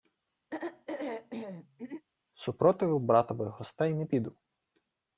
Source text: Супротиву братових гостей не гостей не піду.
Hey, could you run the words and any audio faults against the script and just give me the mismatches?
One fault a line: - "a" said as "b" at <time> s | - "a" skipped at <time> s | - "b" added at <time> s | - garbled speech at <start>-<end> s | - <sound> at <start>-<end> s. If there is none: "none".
- throat clearing at 0.5-2.1 s
- "гостей не" skipped at 4.1 s